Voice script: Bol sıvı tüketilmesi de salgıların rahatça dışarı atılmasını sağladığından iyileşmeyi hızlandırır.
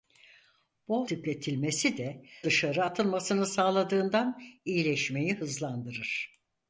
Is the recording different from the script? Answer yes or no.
yes